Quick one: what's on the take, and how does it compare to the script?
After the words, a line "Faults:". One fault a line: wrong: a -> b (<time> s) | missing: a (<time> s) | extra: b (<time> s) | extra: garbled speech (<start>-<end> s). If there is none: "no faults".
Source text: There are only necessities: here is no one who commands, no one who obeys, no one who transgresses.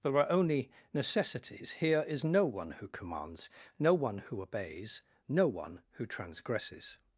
There are only necessities: here is no one who commands, no one who obeys, no one who transgresses.
Faults:
no faults